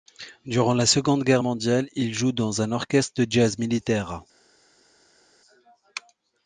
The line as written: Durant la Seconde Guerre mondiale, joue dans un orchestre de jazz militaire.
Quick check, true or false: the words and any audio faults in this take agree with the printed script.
false